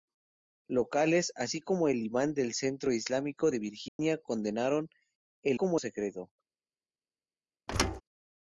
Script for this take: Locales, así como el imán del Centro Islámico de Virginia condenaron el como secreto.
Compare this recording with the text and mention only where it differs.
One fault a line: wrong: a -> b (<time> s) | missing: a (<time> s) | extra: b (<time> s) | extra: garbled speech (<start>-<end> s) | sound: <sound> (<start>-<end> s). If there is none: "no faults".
sound: dropout (3.9-4.0 s)
sound: thud (7.7-8.0 s)